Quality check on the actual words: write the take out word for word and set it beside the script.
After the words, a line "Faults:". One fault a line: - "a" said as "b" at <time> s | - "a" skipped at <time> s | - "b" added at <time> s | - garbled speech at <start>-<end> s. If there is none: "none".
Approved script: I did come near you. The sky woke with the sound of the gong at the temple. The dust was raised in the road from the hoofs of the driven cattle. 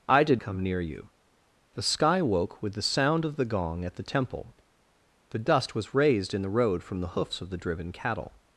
I did come near you. The sky woke with the sound of the gong at the temple. The dust was raised in the road from the hoofs of the driven cattle.
Faults:
none